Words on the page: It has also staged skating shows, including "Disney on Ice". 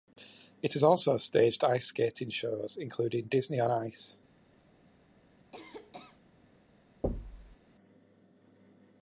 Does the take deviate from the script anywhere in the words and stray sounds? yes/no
yes